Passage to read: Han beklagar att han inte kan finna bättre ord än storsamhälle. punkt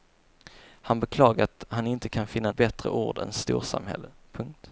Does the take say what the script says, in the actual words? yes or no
yes